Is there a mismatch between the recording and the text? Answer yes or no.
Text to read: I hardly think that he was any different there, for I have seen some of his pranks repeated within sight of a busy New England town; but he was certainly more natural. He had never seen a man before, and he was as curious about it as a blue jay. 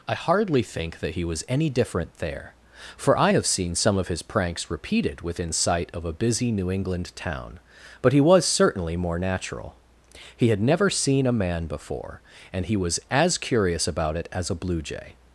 no